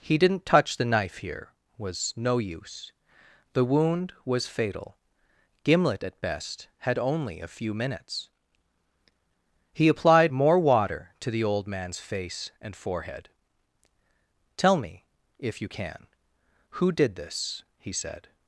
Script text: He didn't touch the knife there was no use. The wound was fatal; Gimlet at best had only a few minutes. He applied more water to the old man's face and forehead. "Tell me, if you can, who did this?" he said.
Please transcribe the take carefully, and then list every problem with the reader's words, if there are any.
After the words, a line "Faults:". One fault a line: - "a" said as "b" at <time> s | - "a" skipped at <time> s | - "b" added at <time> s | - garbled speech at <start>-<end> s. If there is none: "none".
He didn't touch the knife here was no use. The wound was fatal; Gimlet at best had only a few minutes. He applied more water to the old man's face and forehead. "Tell me, if you can, who did this?" he said.
Faults:
- "there" said as "here" at 1.2 s